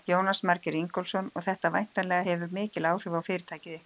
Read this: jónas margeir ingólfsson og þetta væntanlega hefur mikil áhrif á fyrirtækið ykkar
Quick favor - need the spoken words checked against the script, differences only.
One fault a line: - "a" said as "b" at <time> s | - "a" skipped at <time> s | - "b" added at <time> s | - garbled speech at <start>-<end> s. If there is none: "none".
none